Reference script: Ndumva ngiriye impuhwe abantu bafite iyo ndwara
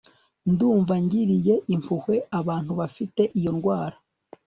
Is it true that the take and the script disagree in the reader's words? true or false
false